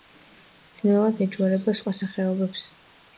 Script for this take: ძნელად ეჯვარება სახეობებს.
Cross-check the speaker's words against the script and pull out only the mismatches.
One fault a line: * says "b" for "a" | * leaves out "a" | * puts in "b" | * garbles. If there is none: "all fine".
* puts in "სხვა"